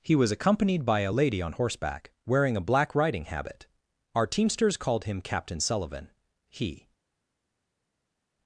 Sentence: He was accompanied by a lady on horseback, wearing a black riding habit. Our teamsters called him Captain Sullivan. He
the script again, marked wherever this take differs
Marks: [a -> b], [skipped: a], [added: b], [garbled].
He was accompanied by a lady on horseback, wearing a black riding habit. Our teamsters called him Captain Sullivan. He